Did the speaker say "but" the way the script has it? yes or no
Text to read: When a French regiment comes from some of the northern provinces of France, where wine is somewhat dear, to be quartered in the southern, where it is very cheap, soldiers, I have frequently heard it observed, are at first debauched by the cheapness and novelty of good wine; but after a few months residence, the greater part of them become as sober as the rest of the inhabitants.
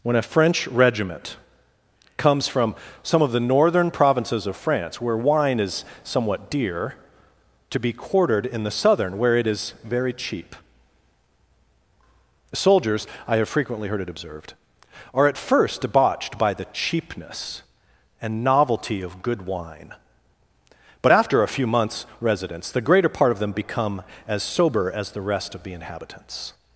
yes